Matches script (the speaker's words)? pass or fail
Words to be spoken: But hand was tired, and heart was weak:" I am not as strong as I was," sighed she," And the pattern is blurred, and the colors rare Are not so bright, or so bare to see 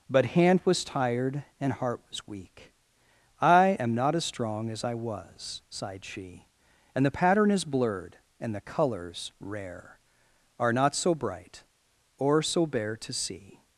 pass